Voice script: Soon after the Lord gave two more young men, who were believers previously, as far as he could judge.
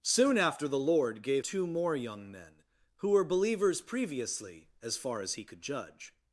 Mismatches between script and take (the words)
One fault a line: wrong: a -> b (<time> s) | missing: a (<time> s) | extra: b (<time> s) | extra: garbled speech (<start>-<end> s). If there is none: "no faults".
no faults